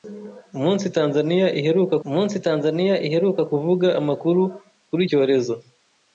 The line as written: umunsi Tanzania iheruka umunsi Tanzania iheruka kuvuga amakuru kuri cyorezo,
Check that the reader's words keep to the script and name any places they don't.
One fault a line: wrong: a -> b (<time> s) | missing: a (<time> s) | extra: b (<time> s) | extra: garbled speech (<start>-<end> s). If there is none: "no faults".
no faults